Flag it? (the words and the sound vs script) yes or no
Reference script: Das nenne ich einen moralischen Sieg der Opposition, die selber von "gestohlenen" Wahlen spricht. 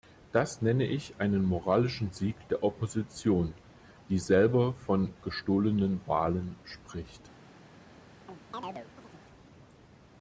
yes